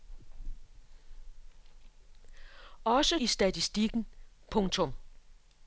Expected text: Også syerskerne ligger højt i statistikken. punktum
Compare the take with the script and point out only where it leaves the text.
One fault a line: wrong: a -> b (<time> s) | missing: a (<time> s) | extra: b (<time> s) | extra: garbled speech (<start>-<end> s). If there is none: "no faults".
missing: syerskerne ligger højt (3.2 s)